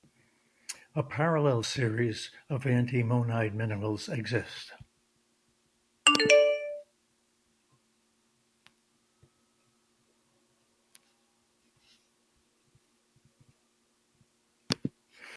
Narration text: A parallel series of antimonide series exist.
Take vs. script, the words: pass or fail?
fail